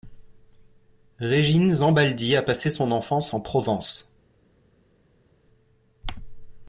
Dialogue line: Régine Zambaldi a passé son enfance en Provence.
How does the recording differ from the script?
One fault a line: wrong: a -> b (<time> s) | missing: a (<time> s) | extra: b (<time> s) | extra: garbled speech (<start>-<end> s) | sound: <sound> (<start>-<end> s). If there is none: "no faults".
no faults